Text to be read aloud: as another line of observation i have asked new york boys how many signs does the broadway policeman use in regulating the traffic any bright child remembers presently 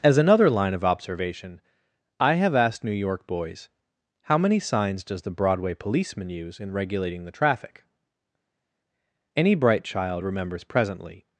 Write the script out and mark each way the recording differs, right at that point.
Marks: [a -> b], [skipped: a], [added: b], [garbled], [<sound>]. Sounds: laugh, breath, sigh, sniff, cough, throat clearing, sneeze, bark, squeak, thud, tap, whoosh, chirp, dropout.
as another line of observation i have asked new york boys how many signs does the broadway policeman use in regulating the traffic any bright child remembers presently